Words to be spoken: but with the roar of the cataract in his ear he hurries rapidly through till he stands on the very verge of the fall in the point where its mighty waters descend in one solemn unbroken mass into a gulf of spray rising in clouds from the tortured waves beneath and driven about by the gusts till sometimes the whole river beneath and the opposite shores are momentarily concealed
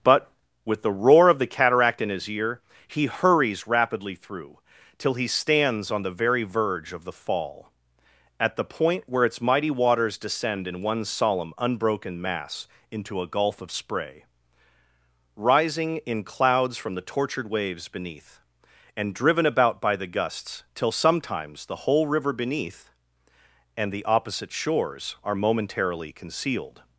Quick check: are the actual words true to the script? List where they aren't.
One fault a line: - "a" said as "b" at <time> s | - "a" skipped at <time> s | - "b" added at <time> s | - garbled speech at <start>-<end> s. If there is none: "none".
- "in" said as "at" at 8.4 s